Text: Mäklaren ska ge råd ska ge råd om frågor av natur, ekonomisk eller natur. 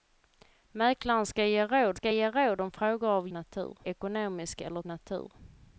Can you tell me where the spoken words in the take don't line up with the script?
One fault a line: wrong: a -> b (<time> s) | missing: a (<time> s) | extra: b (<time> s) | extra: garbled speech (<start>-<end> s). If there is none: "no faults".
no faults